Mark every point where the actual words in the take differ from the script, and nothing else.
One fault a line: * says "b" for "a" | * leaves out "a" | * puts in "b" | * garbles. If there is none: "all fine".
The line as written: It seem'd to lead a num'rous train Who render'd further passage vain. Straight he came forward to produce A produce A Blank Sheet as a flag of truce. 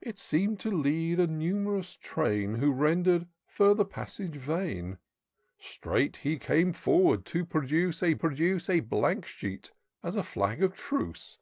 all fine